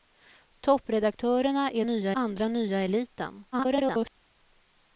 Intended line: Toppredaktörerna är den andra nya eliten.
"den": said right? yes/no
no